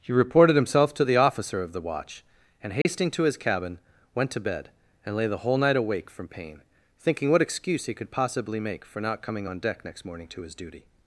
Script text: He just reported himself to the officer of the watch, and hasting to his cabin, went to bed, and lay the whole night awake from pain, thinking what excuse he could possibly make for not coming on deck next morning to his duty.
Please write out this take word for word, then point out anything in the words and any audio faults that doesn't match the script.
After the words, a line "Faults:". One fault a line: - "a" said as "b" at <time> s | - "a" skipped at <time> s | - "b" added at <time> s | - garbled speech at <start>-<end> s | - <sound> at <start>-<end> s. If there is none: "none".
He reported himself to the officer of the watch, and hasting to his cabin, went to bed, and lay the whole night awake from pain, thinking what excuse he could possibly make for not coming on deck next morning to his duty.
Faults:
- "just" skipped at 0.1 s
- dropout at 2.8-2.9 s